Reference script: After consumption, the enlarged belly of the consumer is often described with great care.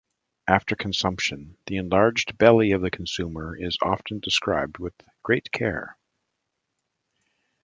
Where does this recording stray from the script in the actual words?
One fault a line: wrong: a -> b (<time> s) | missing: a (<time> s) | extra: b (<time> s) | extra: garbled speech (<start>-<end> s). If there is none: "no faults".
no faults